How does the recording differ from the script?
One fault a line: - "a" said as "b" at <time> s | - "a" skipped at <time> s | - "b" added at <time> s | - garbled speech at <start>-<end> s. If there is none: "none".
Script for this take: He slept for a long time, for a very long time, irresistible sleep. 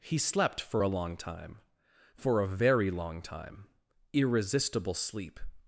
none